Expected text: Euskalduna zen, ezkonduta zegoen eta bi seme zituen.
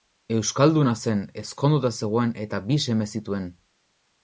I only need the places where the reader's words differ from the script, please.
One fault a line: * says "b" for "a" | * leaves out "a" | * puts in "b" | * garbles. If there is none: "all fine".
all fine